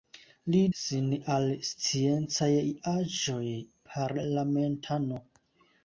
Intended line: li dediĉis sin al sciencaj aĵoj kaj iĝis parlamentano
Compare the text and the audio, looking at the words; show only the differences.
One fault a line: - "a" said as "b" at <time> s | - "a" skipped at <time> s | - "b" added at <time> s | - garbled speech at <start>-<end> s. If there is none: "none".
- "dediĉis" skipped at 0.6 s
- "kaj iĝis" skipped at 3.5 s